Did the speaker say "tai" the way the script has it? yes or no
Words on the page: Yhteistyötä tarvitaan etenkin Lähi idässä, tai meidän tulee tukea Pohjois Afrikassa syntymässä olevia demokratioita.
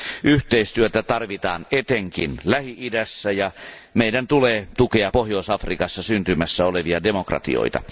no